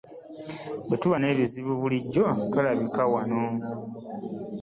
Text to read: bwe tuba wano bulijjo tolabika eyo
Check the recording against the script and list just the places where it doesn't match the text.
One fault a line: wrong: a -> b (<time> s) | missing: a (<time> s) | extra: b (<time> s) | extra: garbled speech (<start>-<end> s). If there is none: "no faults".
wrong: wano -> n'ebizibu (1.2 s)
wrong: eyo -> wano (3.1 s)